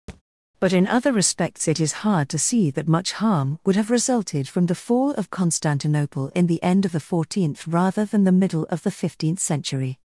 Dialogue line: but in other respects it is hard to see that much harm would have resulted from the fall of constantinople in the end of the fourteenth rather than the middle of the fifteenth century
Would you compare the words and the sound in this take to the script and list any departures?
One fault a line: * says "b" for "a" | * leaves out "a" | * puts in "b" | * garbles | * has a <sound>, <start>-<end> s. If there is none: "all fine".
* has a thud, 0.1-0.2 s